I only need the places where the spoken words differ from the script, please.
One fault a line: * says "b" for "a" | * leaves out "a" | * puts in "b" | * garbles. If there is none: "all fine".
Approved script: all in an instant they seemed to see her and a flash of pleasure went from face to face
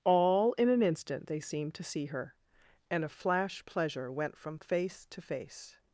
* leaves out "of"